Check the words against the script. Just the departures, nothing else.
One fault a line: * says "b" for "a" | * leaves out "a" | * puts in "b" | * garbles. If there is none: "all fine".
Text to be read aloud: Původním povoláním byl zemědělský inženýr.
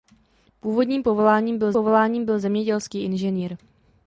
* puts in "povoláním byl"